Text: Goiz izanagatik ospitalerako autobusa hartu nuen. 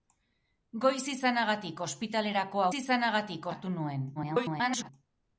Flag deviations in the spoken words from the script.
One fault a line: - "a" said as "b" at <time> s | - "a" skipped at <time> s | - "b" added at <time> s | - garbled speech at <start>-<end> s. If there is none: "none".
- "autobusa" said as "izanagatik" at 2.8 s
- garbled speech at 4.2-4.9 s